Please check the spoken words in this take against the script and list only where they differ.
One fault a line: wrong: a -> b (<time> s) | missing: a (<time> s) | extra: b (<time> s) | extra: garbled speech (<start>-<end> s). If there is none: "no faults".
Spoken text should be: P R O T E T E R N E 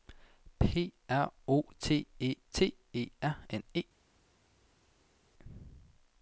no faults